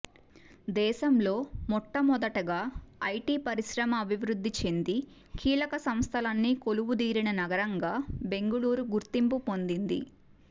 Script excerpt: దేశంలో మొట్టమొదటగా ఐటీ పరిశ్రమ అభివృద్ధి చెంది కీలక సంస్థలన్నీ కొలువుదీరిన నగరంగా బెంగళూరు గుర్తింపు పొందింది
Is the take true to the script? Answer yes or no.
yes